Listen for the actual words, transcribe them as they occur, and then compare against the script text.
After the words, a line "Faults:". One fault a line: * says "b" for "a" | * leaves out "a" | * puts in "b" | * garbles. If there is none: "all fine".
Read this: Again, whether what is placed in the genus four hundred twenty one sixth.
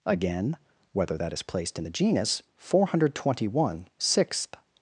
Again, whether that is placed in the genus four hundred twenty one sixth.
Faults:
* says "that" for "what"